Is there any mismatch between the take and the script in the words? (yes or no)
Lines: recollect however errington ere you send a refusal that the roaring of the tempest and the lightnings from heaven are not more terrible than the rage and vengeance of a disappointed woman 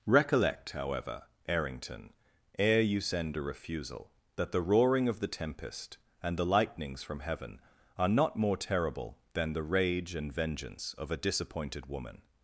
no